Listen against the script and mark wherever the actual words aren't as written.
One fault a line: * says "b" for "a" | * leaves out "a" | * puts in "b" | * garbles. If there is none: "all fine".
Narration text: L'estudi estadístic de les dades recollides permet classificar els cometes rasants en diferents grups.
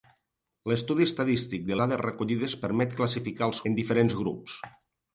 * leaves out "les"
* leaves out "cometes rasants"